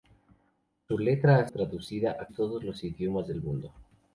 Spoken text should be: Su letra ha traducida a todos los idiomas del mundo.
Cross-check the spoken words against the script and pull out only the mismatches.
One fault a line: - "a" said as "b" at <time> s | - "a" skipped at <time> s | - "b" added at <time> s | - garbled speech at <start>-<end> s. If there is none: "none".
none